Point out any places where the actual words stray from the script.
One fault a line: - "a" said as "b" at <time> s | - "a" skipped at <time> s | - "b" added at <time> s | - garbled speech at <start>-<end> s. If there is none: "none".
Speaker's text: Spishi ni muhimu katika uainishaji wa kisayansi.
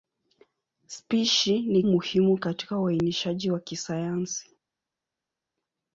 none